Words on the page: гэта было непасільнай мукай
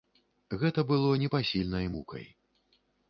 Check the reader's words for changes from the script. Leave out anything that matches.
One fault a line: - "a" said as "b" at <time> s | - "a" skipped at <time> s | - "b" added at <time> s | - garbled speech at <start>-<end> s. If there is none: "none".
none